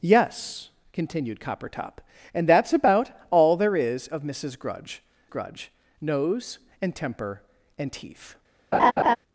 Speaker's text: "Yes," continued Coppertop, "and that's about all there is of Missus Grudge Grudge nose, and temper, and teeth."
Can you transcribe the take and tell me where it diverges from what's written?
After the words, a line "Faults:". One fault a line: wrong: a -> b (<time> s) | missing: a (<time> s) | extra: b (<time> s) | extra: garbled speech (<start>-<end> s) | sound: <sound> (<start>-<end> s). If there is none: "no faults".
"Yes," continued Coppertop, "and that's about all there is of Missus Grudge Grudge nose, and temper, and teeth."
Faults:
sound: laugh (8.7-9.2 s)